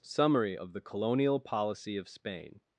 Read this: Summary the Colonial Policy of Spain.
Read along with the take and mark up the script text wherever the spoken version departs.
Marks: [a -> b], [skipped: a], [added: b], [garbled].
Summary [added: of] the Colonial Policy of Spain.